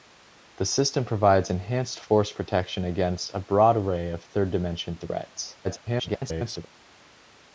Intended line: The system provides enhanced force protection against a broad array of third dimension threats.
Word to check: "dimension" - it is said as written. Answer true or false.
true